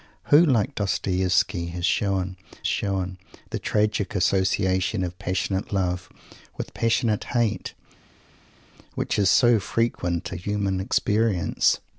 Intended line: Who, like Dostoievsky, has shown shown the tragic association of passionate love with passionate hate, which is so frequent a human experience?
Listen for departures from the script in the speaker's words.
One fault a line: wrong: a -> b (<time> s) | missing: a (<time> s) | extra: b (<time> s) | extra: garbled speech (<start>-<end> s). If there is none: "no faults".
no faults